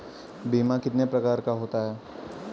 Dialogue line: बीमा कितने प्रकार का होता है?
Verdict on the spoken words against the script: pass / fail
pass